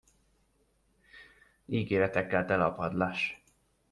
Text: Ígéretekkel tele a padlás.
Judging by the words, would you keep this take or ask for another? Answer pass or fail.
pass